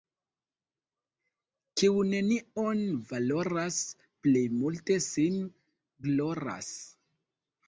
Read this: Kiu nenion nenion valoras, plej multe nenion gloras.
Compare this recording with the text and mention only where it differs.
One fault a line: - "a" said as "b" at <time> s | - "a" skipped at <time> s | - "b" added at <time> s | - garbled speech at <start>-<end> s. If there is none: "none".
- "nenion" skipped at 2.8 s
- "nenion" said as "sin" at 5.1 s